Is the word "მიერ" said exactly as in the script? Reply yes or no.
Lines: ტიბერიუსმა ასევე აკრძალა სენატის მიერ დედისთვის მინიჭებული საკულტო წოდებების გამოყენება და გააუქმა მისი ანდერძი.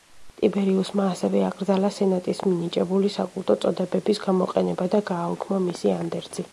no